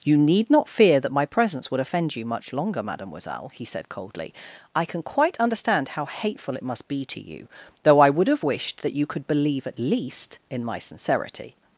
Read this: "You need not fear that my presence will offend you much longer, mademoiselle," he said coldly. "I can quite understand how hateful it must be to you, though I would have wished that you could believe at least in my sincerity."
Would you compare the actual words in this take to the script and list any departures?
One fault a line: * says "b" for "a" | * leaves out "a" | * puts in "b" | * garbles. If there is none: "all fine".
* says "would" for "will"